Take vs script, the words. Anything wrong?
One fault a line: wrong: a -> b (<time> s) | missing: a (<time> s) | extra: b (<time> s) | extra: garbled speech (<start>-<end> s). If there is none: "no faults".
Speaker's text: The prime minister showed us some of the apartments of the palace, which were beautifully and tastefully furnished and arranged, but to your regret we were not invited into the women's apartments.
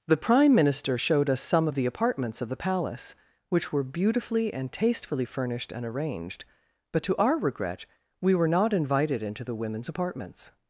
wrong: your -> our (7.2 s)